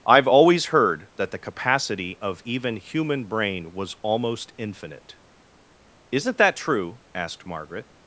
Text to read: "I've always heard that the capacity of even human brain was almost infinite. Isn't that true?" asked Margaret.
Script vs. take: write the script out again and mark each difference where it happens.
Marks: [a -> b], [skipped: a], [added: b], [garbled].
"I've always heard that the capacity of even human brain was almost infinite. Isn't that true?" asked Margaret.